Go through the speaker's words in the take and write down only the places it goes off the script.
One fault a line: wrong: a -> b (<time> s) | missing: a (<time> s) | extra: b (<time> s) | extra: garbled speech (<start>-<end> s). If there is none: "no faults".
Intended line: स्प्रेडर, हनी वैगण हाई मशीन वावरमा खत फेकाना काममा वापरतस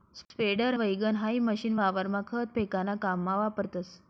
missing: हनी (0.8 s)